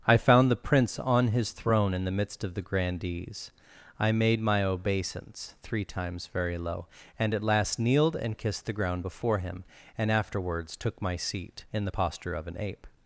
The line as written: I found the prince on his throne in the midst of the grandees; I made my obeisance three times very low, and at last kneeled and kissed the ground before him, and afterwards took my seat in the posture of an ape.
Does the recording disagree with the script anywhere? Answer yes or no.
no